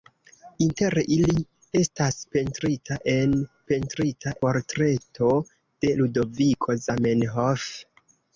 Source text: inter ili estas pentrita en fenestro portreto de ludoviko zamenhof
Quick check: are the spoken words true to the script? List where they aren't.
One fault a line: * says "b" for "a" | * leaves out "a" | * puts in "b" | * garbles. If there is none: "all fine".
* says "pentrita" for "fenestro"